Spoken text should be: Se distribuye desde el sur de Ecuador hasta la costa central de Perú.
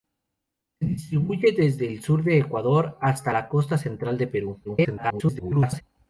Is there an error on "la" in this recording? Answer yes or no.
no